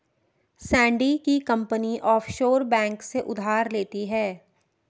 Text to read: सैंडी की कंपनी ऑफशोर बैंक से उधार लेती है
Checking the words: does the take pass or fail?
pass